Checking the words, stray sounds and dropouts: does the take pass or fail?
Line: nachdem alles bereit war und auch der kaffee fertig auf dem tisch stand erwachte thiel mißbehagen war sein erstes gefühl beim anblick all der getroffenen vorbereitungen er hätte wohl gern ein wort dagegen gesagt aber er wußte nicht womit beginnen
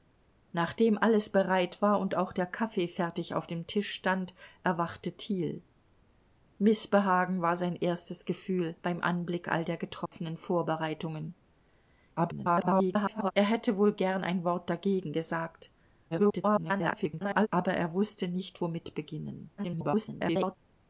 fail